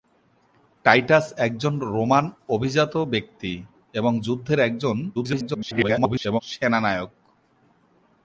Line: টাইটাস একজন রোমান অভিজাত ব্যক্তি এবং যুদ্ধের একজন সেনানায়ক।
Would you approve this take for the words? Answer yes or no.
no